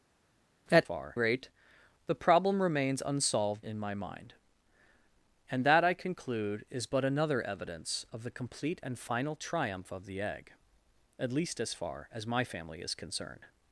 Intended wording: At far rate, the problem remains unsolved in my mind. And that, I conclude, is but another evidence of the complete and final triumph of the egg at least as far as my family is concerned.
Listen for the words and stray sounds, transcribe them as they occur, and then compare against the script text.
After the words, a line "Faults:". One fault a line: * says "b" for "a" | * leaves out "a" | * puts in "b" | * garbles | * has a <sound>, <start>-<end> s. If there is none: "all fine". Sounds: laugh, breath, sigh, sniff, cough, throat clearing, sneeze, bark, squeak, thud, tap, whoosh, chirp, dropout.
At far rate, the problem remains unsolved in my mind. And that, I conclude, is but another evidence of the complete and final triumph of the egg at least as far as my family is concerned.
Faults:
all fine